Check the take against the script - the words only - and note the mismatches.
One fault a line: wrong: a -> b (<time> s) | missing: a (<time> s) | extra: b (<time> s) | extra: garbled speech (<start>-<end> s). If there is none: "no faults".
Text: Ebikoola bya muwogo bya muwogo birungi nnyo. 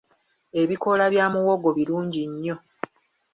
missing: bya muwogo (1.7 s)